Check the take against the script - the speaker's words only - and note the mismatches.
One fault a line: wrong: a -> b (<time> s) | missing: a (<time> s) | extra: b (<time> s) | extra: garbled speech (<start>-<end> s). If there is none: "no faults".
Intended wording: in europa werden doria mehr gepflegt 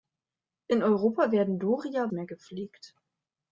no faults